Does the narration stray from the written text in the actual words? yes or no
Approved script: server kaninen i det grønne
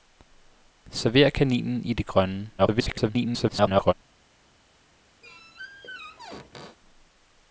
yes